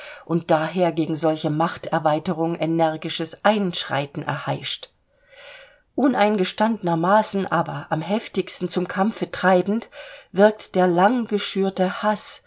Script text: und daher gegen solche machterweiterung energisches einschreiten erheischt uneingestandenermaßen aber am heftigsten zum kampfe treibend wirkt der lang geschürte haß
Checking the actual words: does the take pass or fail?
pass